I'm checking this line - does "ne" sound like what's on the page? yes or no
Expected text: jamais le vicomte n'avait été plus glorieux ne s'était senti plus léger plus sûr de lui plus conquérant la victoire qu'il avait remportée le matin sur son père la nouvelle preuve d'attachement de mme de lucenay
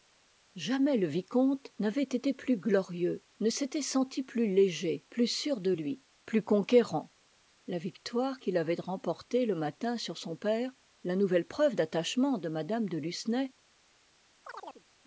yes